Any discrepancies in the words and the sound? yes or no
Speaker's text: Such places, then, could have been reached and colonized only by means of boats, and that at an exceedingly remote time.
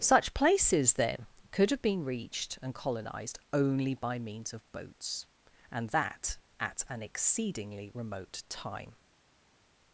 no